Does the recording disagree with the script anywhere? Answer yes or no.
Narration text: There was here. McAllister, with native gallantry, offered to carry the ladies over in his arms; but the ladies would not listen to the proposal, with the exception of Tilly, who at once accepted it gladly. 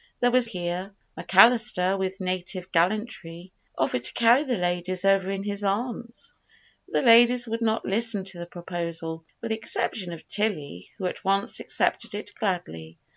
no